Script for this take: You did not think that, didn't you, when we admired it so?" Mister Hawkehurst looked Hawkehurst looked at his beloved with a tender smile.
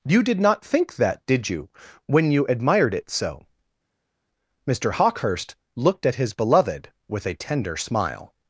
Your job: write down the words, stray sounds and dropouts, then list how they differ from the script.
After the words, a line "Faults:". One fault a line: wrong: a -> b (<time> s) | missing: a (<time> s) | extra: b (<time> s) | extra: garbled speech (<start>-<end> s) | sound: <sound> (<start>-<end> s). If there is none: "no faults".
You did not think that, did you, when you admired it so?" Mister Hawkehurst looked at his beloved with a tender smile.
Faults:
wrong: didn't -> did (1.3 s)
wrong: we -> you (2.3 s)
missing: Hawkehurst looked (6.0 s)